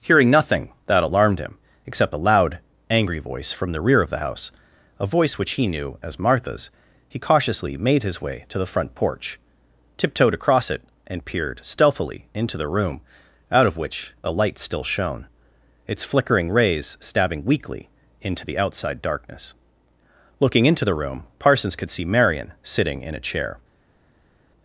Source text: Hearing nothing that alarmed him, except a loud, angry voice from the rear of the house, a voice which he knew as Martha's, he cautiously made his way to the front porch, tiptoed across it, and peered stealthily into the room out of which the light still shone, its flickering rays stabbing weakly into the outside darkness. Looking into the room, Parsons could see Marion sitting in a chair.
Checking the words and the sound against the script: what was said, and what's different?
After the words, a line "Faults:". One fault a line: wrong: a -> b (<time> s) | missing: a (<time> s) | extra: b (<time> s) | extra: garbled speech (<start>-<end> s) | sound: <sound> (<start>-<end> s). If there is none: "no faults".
Hearing nothing that alarmed him, except a loud, angry voice from the rear of the house, a voice which he knew as Martha's, he cautiously made his way to the front porch, tiptoed across it, and peered stealthily into the room out of which a light still shone, its flickering rays stabbing weakly into the outside darkness. Looking into the room, Parsons could see Marion sitting in a chair.
Faults:
wrong: the -> a (14.2 s)